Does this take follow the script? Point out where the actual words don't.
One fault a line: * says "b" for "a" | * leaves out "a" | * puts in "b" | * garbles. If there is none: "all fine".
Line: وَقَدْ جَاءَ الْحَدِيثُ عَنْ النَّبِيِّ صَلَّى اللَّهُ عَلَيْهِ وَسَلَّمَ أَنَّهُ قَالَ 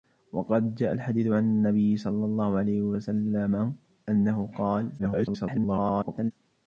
* garbles